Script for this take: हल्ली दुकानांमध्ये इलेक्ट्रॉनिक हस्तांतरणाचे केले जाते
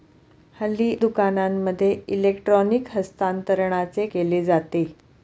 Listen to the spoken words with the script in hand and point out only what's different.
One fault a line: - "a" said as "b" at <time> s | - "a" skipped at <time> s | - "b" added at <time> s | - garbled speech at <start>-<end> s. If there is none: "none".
none